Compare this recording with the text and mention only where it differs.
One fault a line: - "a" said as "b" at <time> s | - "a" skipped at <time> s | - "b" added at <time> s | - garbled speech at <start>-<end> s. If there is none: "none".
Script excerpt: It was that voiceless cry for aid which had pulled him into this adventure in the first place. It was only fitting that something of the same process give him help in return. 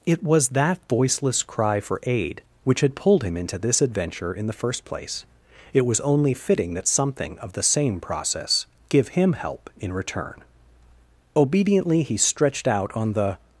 - "Obediently he stretched out on the" added at 11.3 s